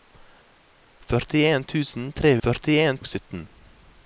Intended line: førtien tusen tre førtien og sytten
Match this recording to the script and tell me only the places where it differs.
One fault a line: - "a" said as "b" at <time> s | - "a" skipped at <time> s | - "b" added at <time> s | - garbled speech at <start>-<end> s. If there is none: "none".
none